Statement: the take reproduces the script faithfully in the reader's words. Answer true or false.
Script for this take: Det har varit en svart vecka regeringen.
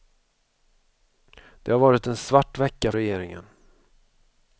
true